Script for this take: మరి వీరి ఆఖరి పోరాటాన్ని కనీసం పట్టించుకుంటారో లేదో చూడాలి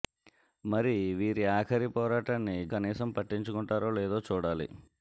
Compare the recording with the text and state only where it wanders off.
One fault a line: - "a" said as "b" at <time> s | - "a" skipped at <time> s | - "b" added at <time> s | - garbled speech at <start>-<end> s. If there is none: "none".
none